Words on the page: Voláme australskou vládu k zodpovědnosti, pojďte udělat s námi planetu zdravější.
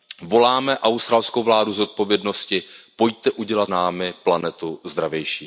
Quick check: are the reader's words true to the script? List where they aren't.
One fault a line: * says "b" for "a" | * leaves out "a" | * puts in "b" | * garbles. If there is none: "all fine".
* leaves out "s"